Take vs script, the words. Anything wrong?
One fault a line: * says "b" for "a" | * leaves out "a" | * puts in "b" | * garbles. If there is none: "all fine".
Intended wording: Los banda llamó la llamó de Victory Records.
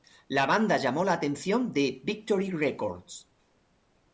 * says "La" for "Los"
* says "atención" for "llamó"